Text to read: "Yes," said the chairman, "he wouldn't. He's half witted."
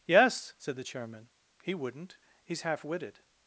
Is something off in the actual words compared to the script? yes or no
no